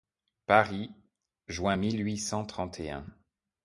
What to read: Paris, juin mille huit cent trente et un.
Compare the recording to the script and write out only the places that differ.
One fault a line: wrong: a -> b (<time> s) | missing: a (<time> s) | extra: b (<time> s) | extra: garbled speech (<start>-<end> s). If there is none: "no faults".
no faults